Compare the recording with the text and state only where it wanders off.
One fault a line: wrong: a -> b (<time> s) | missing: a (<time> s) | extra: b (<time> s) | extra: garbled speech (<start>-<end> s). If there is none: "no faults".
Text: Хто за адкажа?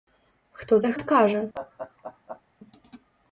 no faults